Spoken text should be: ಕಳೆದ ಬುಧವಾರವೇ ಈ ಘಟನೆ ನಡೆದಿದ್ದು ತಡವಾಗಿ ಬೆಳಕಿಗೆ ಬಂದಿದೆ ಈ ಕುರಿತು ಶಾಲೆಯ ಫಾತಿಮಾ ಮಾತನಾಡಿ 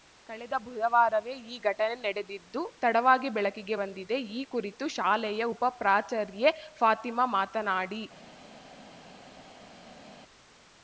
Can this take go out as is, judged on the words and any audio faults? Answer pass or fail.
fail